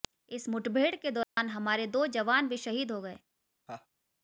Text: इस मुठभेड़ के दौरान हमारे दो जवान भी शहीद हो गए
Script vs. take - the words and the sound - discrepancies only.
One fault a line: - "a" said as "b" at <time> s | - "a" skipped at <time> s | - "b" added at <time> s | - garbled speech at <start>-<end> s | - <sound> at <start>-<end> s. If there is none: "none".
- dropout at 1.2-1.4 s
- laugh at 3.7-3.9 s